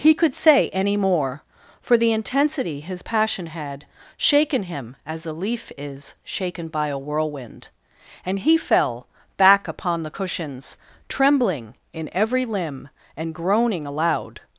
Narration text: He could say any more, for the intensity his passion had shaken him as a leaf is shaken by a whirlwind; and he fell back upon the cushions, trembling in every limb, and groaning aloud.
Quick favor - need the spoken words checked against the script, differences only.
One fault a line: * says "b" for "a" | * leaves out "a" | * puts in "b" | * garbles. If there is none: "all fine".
all fine